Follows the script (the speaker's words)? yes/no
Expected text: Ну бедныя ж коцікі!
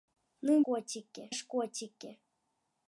no